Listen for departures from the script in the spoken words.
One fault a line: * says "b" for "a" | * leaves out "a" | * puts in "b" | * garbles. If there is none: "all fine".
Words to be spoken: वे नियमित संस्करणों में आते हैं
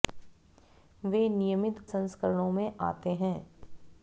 all fine